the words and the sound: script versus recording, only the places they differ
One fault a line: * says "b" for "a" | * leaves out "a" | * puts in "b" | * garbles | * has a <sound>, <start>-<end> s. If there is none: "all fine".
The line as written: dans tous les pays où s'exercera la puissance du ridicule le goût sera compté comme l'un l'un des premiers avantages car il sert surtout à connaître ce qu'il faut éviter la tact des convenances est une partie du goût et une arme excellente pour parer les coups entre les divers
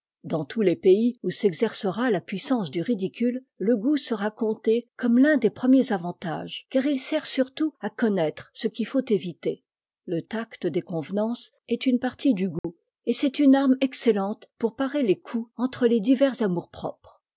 * leaves out "l'un"
* says "le" for "la"
* has a dropout, 12.6-12.6 s
* puts in "c'est"